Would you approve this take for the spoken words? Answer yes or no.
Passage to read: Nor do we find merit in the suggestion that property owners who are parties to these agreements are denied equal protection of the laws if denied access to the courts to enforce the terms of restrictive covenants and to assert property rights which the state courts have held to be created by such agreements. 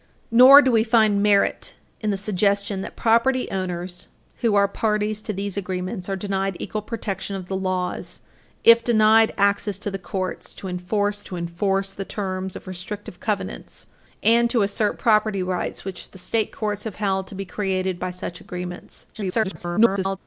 no